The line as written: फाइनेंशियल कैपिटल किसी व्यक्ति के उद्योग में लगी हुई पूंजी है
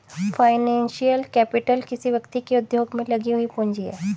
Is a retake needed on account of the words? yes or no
no